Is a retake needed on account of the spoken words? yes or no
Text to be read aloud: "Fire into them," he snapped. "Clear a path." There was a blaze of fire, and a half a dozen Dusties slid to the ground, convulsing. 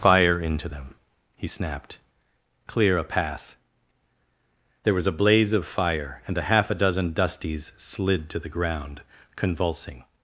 no